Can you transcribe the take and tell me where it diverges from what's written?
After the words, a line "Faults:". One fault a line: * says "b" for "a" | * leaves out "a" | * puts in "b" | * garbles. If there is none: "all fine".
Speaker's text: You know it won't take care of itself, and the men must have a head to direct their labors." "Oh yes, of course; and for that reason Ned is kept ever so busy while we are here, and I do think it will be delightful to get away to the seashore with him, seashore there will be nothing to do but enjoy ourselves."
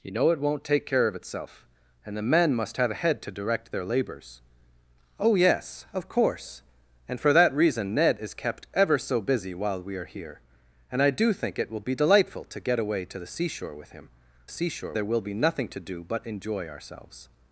You know it won't take care of itself, and the men must have a head to direct their labors." "Oh yes, of course; and for that reason Ned is kept ever so busy while we are here, and I do think it will be delightful to get away to the seashore with him, seashore there will be nothing to do but enjoy ourselves."
Faults:
all fine